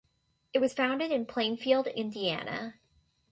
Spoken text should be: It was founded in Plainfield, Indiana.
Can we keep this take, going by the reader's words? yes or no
yes